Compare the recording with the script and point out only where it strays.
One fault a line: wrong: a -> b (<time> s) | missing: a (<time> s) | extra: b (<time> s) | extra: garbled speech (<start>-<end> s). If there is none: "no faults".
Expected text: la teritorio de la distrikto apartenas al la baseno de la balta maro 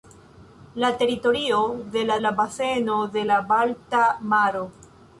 missing: distrikto apartenas al (2.1 s)